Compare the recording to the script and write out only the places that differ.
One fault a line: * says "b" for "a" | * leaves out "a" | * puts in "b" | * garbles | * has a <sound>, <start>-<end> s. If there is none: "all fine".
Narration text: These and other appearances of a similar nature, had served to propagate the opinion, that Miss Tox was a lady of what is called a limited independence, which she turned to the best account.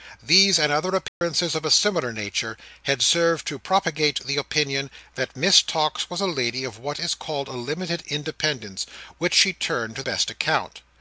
* has a dropout, 1.1-1.2 s
* leaves out "the"